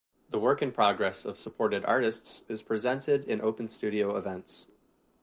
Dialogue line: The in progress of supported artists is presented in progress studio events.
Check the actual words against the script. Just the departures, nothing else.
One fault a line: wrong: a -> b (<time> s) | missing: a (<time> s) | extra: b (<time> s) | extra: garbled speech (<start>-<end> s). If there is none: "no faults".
extra: work (0.4 s)
wrong: progress -> open (3.4 s)